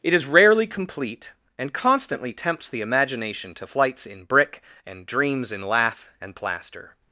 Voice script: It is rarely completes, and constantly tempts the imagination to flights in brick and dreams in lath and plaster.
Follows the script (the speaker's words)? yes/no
no